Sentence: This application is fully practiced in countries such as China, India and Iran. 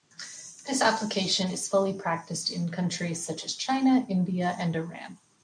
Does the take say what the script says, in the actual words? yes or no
yes